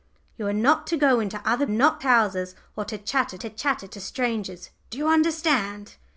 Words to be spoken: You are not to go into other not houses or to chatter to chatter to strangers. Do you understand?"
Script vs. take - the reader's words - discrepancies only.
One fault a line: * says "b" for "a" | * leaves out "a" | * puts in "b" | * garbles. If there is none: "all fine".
all fine